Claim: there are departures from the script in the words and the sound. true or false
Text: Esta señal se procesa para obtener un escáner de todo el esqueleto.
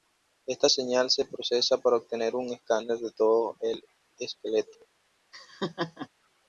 true